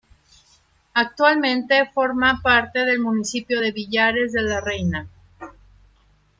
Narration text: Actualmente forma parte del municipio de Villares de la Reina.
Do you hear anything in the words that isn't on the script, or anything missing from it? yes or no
no